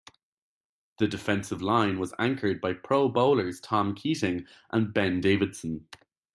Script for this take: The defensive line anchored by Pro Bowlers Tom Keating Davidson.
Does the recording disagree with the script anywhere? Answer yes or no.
yes